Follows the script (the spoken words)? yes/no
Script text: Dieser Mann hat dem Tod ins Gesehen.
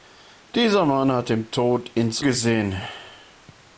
yes